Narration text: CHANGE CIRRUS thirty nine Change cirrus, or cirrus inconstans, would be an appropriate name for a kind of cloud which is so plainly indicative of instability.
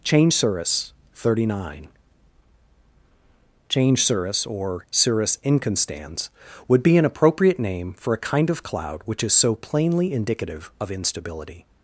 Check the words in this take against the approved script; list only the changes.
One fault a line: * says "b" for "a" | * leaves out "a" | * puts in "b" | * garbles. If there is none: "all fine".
all fine